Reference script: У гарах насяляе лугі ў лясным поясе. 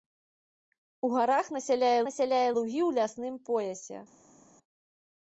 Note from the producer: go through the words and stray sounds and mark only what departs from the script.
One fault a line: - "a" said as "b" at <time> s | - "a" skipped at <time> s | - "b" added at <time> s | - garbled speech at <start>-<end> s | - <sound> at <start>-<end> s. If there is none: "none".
- "насяляе" added at 2.1 s